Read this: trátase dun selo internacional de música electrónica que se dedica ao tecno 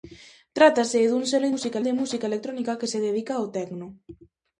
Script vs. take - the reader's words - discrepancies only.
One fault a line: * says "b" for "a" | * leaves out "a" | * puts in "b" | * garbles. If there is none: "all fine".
* says "música" for "internacional"